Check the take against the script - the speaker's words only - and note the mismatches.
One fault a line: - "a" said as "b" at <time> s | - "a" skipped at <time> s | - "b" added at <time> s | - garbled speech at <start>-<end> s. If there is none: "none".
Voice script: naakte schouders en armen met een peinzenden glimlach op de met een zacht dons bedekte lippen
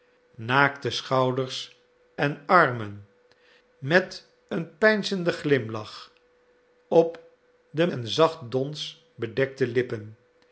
- "met" skipped at 7.9 s